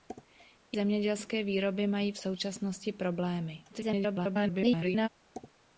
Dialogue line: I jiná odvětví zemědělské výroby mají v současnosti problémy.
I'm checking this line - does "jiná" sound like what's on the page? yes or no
no